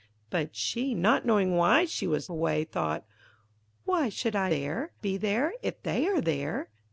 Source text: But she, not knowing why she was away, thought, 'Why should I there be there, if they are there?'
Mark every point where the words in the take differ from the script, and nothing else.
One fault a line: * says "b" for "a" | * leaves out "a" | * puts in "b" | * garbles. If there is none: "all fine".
all fine